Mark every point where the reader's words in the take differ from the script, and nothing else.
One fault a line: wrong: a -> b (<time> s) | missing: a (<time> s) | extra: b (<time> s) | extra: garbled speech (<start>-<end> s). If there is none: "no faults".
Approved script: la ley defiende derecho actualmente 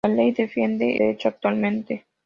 no faults